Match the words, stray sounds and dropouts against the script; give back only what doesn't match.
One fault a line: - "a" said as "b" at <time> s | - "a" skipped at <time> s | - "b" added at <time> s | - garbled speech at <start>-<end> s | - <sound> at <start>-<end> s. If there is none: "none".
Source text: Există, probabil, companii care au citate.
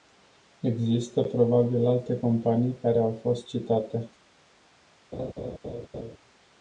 - "alte" added at 1.9 s
- "fost" added at 3.2 s
- laugh at 5.1-6.2 s